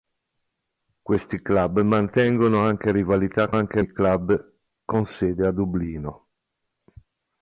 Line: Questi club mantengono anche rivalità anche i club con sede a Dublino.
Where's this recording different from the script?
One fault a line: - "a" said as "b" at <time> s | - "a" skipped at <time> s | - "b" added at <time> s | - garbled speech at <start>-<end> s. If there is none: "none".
none